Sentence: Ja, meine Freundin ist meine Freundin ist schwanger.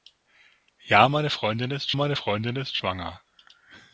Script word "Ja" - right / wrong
right